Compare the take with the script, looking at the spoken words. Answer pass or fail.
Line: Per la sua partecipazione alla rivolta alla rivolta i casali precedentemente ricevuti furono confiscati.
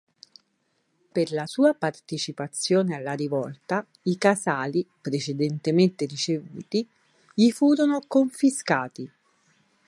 fail